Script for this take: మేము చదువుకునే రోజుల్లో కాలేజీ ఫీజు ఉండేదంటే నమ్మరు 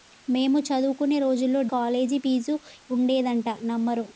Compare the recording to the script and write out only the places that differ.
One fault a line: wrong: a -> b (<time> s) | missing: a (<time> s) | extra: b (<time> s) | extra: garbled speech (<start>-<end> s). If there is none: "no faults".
no faults